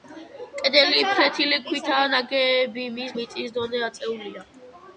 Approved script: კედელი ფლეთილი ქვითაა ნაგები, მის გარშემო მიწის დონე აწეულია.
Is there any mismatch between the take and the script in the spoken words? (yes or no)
yes